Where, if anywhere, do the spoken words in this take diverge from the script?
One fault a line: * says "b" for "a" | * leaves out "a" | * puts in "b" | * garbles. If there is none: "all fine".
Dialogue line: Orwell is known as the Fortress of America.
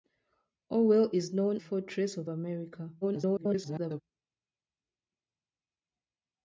* leaves out "as the"
* garbles